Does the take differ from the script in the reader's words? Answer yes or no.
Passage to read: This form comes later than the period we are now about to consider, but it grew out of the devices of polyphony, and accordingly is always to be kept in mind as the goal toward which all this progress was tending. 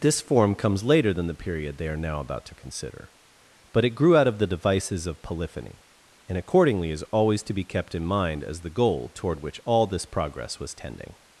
yes